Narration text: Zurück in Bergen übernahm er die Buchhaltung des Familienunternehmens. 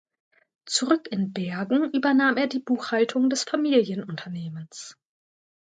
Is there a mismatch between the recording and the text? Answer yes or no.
no